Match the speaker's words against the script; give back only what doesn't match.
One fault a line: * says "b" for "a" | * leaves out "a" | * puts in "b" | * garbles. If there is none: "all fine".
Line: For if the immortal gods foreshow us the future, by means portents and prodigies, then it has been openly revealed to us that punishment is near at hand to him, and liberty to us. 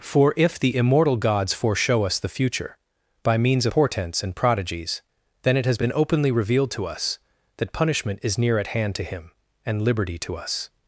all fine